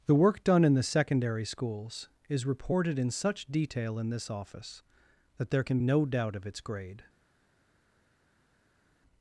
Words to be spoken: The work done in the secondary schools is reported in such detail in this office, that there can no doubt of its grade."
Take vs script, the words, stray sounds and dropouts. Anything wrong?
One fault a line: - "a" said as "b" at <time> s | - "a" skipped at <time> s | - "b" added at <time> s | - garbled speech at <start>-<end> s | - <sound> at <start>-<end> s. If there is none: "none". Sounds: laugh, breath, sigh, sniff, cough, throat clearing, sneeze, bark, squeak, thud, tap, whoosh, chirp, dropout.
none